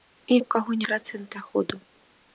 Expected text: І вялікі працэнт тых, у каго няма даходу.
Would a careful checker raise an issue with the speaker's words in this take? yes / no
yes